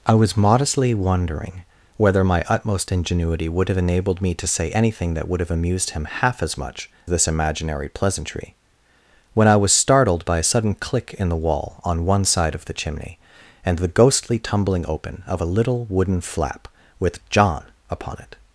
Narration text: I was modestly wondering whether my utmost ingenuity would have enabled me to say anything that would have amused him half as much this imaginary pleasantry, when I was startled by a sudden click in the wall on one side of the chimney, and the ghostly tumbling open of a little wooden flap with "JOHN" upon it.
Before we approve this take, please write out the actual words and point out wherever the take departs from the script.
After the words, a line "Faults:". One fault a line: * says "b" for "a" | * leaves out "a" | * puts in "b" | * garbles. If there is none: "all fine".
I was modestly wondering whether my utmost ingenuity would have enabled me to say anything that would have amused him half as much this imaginary pleasantry, when I was startled by a sudden click in the wall on one side of the chimney, and the ghostly tumbling open of a little wooden flap with "JOHN" upon it.
Faults:
all fine